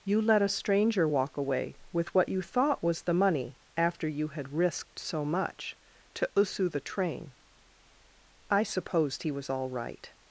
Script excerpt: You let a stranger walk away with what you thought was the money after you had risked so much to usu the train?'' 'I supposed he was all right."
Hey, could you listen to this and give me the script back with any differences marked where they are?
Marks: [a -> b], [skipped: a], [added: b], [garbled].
You let a stranger walk away with what you thought was the money after you had risked so much to usu the train?'' 'I supposed he was all right."